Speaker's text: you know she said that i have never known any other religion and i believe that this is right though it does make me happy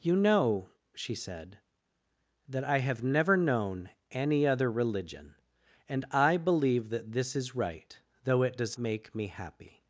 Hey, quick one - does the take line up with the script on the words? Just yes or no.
yes